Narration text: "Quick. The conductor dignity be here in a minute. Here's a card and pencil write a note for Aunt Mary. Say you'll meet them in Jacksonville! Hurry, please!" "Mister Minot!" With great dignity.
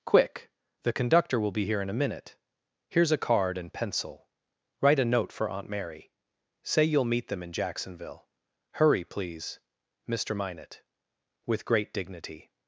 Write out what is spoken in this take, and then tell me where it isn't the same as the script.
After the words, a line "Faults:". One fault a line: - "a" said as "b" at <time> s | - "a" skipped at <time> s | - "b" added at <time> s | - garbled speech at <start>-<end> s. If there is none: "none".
"Quick. The conductor will be here in a minute. Here's a card and pencil write a note for Aunt Mary. Say you'll meet them in Jacksonville! Hurry, please!" "Mister Minot!" With great dignity.
Faults:
- "dignity" said as "will" at 1.4 s